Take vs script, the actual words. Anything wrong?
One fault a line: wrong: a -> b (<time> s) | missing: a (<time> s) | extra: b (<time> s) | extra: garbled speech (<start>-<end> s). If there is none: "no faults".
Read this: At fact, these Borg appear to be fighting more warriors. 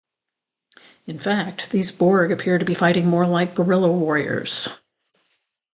wrong: At -> In (1.1 s)
extra: like guerrilla (3.3 s)